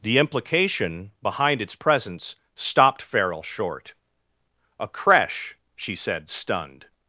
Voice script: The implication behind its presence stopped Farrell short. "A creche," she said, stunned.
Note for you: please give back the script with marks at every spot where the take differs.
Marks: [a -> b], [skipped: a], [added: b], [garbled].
The implication behind its presence stopped Farrell short. "A creche," she said, stunned.